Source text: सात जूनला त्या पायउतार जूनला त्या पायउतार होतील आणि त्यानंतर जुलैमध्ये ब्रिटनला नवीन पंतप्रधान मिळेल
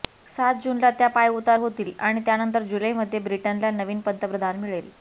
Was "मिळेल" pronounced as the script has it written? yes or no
yes